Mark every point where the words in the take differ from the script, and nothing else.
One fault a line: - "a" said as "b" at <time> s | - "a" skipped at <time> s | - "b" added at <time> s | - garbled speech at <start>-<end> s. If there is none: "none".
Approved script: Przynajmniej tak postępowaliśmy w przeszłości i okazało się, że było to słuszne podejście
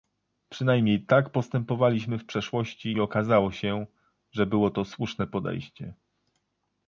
none